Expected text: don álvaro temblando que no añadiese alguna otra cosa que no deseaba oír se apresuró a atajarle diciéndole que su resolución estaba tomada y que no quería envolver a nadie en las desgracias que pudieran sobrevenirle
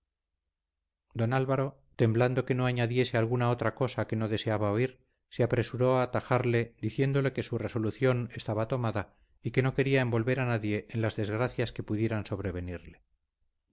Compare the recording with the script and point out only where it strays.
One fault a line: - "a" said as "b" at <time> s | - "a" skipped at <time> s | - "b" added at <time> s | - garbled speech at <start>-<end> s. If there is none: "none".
none